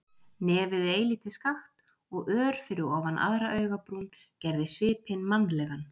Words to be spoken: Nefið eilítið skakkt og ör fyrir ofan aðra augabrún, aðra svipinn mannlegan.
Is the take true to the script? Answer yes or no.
no